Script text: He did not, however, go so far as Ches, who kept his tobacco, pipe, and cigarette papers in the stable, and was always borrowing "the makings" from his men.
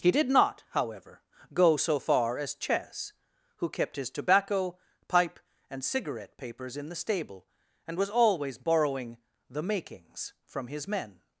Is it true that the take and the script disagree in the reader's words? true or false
false